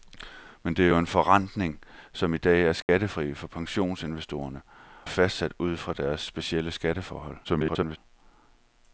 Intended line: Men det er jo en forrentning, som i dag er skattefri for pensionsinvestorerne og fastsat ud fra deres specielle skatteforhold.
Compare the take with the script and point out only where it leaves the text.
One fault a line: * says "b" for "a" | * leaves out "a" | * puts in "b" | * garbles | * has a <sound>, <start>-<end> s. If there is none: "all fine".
* has a dropout, 2.8-2.9 s
* leaves out "og"
* garbles